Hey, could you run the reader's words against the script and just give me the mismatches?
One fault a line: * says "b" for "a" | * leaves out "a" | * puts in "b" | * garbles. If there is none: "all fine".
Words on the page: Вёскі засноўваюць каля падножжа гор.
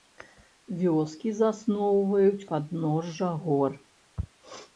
* leaves out "каля"